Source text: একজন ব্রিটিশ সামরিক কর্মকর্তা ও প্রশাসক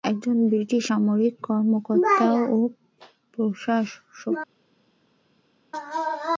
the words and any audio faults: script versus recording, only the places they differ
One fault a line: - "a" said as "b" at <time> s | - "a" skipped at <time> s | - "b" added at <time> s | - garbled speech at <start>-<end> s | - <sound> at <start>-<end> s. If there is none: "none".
none